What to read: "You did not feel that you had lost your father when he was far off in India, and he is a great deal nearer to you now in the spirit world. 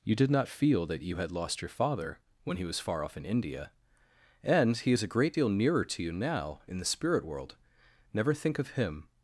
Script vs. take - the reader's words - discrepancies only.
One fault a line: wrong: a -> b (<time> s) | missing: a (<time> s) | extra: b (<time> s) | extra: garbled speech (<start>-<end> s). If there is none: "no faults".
extra: Never think of him (8.1 s)